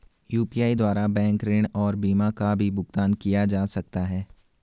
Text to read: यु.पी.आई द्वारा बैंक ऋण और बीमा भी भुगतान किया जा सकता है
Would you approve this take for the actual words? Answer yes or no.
no